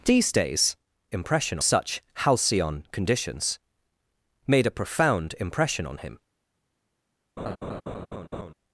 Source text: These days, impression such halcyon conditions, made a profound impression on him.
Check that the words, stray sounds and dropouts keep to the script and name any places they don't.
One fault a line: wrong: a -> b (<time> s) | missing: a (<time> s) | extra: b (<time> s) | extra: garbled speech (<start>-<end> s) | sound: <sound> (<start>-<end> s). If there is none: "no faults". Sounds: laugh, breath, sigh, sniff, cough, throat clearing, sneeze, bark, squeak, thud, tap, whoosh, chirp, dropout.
sound: laugh (7.4-8.5 s)